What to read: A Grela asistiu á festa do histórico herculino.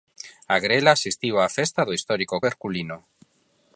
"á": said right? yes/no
yes